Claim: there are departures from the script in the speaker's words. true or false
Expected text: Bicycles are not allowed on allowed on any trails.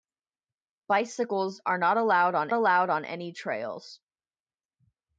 false